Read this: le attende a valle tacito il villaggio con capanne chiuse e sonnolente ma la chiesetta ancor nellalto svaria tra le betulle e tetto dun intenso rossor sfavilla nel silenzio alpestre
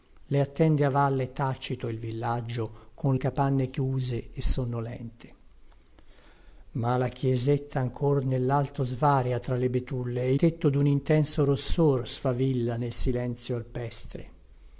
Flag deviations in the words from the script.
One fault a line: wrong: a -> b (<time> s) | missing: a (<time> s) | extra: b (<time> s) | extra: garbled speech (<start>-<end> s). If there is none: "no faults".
no faults